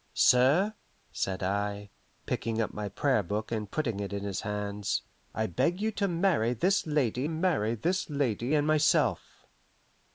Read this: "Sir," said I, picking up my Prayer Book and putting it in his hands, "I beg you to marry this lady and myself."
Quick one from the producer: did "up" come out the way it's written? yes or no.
yes